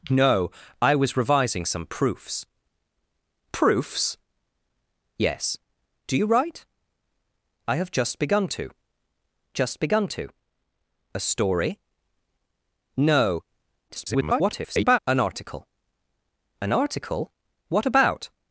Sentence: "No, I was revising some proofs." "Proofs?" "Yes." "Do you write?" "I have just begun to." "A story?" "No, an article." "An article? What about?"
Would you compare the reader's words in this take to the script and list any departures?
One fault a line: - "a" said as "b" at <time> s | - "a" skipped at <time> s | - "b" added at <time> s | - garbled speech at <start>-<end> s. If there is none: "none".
- "just begun to" added at 9.5 s
- garbled speech at 13.9-15.0 s